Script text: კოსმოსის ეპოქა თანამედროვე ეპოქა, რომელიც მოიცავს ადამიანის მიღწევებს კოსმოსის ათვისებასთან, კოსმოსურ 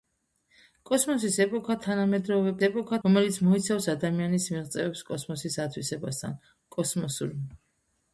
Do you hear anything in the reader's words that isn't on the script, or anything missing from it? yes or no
no